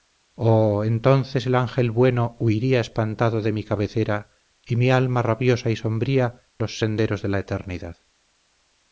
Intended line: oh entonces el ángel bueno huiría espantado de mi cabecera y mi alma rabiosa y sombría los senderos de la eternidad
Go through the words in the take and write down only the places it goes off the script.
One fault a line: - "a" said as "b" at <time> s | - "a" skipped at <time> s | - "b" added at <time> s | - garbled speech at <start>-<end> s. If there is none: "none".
none